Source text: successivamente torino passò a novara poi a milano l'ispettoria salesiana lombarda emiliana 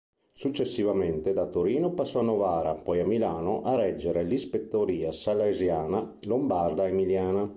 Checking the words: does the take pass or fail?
fail